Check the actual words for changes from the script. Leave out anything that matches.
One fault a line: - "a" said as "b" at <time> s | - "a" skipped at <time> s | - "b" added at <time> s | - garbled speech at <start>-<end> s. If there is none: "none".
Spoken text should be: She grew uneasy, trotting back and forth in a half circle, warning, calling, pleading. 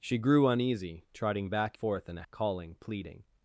- "and" skipped at 1.8 s
- "half circle warning" skipped at 2.2 s